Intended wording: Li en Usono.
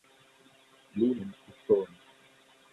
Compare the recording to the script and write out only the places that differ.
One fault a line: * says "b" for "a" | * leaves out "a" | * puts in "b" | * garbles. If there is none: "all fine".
all fine